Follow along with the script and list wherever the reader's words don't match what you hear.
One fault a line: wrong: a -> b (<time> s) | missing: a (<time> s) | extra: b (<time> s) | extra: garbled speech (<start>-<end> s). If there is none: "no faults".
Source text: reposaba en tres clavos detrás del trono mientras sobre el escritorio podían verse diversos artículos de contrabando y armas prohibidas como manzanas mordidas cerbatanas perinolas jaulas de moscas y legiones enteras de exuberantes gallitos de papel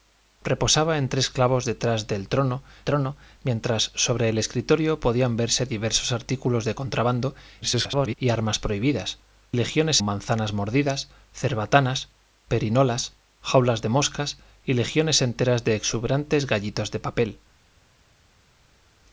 extra: trono (2.8 s)
extra: garbled speech (7.6-8.2 s)
wrong: como -> legiones (9.5 s)